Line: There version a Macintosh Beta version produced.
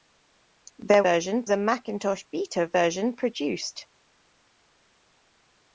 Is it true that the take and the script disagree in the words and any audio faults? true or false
false